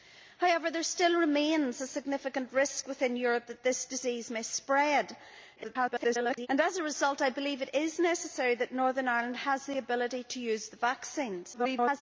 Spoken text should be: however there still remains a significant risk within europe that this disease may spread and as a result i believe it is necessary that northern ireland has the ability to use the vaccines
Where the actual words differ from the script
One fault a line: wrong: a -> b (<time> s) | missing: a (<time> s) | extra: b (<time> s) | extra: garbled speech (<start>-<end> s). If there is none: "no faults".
extra: garbled speech (5.6-6.5 s)
extra: garbled speech (11.5-12.0 s)